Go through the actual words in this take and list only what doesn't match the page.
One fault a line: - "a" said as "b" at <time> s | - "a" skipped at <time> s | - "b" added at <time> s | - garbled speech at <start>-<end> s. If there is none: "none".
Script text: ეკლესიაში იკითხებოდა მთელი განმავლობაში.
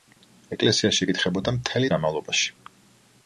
none